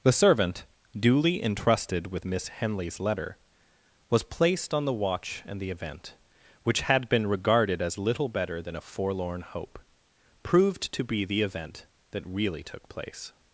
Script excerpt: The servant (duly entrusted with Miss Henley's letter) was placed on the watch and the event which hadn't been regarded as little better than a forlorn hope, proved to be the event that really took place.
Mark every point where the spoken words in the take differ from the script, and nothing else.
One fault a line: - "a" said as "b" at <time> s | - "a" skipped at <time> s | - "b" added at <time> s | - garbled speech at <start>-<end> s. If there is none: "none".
- "hadn't" said as "had" at 6.8 s